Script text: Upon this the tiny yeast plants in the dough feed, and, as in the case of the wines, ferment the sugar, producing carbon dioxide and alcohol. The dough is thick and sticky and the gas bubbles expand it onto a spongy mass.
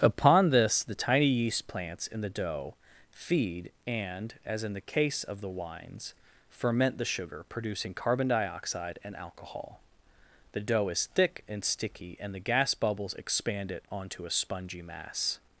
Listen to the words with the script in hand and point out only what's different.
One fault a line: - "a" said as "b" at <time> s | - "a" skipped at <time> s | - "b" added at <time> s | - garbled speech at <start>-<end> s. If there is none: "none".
none